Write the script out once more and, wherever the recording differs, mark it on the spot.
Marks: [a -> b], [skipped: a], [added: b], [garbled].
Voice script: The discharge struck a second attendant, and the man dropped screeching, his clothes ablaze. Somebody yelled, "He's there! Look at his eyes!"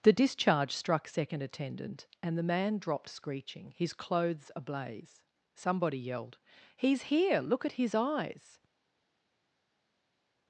The discharge struck [skipped: a] second attendant, and the man dropped screeching, his clothes ablaze. Somebody yelled, "He's [there! -> here] Look at his eyes!"